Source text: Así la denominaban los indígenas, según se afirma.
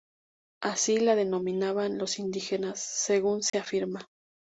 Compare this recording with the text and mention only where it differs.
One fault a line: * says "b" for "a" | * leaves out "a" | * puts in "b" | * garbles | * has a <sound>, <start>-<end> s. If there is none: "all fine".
* has a dropout, 3.5-3.5 s